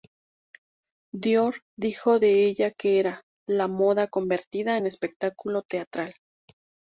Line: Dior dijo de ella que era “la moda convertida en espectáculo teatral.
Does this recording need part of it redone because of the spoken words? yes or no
no